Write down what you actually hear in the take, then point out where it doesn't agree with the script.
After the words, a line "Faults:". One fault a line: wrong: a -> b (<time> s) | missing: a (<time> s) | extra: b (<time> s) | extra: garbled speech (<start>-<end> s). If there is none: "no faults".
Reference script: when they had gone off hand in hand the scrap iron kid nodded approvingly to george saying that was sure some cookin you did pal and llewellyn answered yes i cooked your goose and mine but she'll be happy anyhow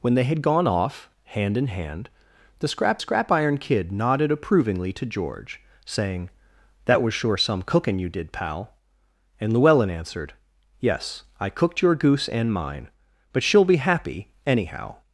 when they had gone off hand in hand the scrap scrap iron kid nodded approvingly to george saying that was sure some cookin you did pal and llewellyn answered yes i cooked your goose and mine but she'll be happy anyhow
Faults:
extra: scrap (3.0 s)